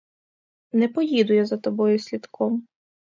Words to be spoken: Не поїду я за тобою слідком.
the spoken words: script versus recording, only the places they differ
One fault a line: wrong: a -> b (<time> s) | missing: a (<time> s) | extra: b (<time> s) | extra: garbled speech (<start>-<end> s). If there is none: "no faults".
no faults